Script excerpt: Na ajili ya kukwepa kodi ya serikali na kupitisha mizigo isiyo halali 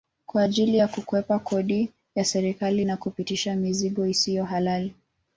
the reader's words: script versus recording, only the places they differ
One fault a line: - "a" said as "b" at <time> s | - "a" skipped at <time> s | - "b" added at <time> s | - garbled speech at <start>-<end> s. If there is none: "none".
- "Na" said as "Kwa" at 0.2 s